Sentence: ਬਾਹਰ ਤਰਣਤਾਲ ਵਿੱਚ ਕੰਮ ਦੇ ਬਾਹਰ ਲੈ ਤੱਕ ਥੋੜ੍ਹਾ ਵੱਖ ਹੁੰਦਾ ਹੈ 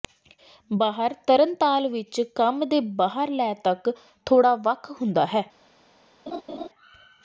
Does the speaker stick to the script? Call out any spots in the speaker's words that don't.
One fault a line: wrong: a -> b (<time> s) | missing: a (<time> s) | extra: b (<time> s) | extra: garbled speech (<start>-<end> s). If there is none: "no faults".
no faults